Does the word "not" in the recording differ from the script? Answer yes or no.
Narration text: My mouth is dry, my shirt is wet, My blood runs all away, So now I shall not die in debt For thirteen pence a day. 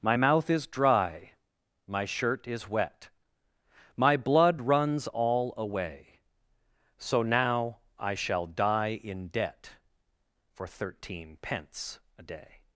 yes